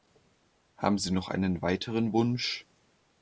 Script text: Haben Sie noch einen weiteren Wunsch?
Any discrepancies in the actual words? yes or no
no